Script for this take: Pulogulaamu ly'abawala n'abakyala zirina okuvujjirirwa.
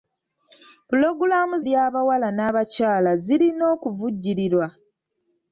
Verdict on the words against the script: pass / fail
pass